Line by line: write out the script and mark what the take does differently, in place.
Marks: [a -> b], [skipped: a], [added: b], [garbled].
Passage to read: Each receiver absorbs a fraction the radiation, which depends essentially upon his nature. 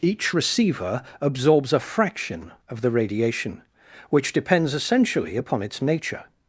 Each receiver absorbs a fraction [added: of] the radiation, which depends essentially upon [his -> its] nature.